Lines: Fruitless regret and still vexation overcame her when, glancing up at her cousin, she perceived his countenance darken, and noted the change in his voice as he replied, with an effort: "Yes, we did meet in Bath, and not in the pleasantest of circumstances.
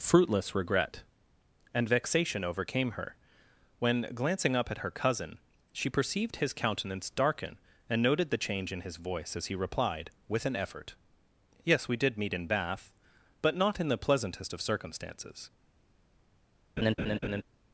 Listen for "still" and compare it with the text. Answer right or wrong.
wrong